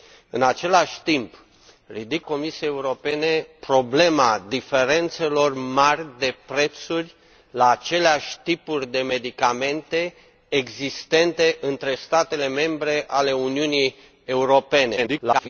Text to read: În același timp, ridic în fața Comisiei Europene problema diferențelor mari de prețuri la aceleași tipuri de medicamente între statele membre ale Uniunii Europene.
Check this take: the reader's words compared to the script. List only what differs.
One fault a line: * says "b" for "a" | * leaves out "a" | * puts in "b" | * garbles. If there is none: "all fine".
* leaves out "în fața"
* garbles